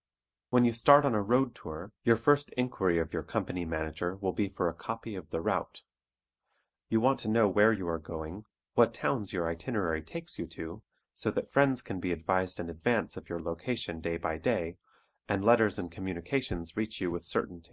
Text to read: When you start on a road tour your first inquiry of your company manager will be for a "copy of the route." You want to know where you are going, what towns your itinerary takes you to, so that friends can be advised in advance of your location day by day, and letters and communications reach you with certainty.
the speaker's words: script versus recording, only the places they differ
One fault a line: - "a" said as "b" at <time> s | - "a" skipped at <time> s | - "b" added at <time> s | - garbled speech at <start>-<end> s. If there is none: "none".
none